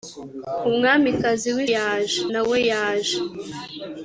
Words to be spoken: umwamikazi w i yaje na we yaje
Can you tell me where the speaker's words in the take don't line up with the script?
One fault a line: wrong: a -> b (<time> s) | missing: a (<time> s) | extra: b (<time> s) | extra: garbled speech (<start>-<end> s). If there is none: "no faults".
no faults